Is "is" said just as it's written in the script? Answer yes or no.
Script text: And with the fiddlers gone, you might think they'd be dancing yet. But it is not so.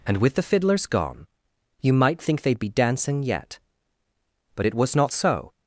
no